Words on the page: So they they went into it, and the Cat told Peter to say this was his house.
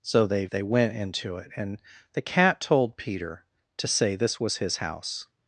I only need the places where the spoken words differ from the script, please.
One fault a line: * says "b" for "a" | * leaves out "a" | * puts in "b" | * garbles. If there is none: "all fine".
all fine